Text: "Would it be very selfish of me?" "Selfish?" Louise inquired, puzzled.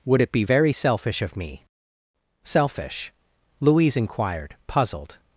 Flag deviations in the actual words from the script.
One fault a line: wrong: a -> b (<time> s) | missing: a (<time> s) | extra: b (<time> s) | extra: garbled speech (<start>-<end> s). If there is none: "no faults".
no faults